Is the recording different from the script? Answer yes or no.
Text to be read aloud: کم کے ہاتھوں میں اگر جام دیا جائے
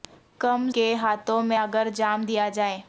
no